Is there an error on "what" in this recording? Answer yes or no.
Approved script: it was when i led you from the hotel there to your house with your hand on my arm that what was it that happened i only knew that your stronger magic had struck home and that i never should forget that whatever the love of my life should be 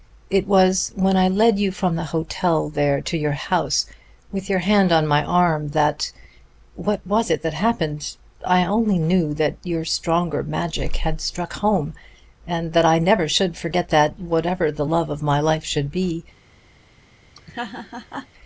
no